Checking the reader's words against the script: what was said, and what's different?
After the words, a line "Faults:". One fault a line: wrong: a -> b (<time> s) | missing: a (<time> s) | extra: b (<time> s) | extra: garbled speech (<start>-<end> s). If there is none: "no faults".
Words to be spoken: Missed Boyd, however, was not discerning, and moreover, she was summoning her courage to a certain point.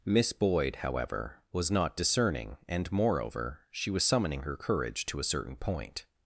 Miss Boyd, however, was not discerning, and moreover, she was summoning her courage to a certain point.
Faults:
wrong: Missed -> Miss (0.0 s)